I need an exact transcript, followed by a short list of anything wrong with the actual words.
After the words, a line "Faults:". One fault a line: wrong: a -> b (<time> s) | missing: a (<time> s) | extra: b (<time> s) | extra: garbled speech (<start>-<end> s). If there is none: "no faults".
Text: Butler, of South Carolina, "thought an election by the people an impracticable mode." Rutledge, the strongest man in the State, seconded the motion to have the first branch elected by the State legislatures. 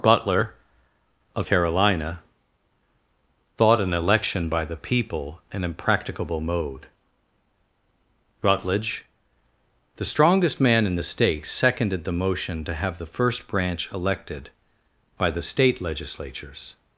Butler, of Carolina, "thought an election by the people an impracticable mode." Rutledge, the strongest man in the State, seconded the motion to have the first branch elected by the State legislatures.
Faults:
missing: South (1.5 s)